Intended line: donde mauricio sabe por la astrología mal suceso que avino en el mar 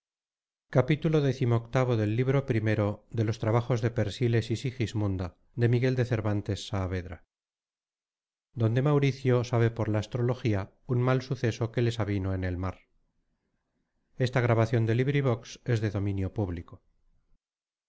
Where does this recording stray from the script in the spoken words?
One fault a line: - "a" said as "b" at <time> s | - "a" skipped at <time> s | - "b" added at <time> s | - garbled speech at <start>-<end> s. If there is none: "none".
- "un" added at 10.9 s
- "les" added at 11.8 s